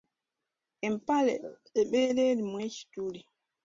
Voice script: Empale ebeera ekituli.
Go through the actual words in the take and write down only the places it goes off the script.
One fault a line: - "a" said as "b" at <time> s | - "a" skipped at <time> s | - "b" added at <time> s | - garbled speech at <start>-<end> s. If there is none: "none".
- "erimu" added at 2.3 s